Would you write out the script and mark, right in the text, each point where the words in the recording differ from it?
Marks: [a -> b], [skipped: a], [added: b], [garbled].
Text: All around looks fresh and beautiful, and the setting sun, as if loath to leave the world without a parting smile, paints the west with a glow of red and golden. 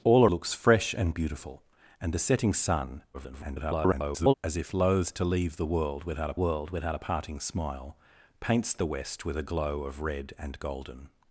All [skipped: around] looks fresh and beautiful, and the setting sun, [garbled] as if loath to leave the world without a [added: world without a] parting smile, paints the west with a glow of red and golden.